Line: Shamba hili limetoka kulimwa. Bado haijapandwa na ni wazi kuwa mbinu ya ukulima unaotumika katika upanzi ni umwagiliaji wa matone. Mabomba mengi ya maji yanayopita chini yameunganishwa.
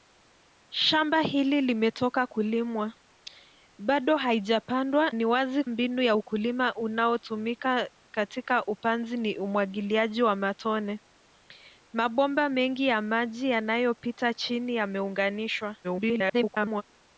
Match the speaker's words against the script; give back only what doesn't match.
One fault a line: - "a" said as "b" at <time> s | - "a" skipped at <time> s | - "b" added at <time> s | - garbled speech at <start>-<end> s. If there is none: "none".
- "na" skipped at 5.1 s
- "kuwa" skipped at 5.6 s
- garbled speech at 15.8-16.8 s